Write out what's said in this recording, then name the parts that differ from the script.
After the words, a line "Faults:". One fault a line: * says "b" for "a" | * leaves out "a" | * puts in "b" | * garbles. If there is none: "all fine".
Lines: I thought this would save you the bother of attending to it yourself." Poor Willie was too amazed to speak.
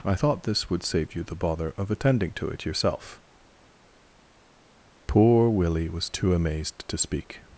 I thought this would save you the bother of attending to it yourself." Poor Willie was too amazed to speak.
Faults:
all fine